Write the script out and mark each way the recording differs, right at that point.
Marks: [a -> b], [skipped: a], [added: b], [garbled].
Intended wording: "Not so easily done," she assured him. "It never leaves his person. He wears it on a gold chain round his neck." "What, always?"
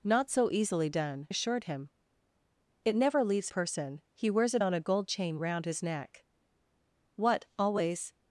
"Not so easily done," [skipped: she] assured him. "It never leaves [skipped: his] person. He wears it on a gold chain round his neck." "What, always?"